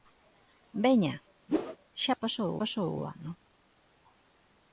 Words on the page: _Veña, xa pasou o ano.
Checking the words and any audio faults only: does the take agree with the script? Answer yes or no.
no